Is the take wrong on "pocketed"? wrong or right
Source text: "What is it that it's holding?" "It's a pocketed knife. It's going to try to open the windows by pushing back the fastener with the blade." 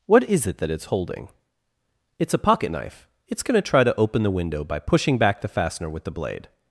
wrong